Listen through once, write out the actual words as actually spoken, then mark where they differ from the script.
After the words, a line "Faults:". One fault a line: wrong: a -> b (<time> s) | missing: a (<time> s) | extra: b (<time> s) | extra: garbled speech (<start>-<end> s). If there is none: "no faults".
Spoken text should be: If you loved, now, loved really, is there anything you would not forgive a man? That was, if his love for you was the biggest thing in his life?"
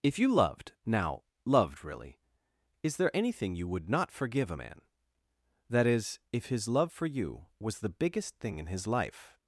If you loved, now, loved really, is there anything you would not forgive a man? That is, if his love for you was the biggest thing in his life?"
Faults:
wrong: was -> is (5.9 s)